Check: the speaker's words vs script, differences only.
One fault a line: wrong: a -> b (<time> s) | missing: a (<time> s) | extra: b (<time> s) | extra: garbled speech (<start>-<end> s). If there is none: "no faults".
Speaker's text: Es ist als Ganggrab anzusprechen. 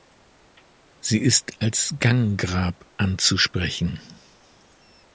wrong: Es -> Sie (1.0 s)